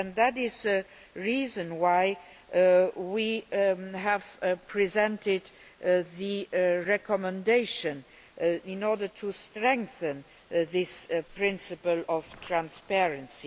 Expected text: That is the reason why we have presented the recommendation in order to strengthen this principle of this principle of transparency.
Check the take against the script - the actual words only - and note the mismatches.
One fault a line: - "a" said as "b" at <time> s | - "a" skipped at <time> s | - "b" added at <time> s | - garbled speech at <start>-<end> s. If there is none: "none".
- "this principle of" skipped at 12.2 s